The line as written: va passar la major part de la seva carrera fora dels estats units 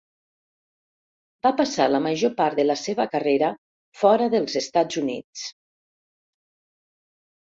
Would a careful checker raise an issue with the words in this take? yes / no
no